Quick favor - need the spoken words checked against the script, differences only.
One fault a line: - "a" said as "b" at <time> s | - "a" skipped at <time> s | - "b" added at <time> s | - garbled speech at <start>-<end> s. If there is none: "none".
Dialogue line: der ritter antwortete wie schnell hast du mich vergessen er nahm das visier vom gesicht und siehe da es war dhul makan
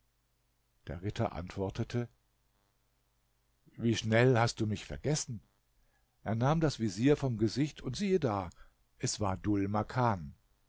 none